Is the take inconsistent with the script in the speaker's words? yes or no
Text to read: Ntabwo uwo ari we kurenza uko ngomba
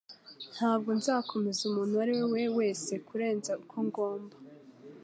yes